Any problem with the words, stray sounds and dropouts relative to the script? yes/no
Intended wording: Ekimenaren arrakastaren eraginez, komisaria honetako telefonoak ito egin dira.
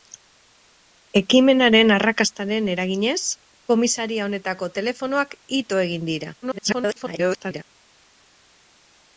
yes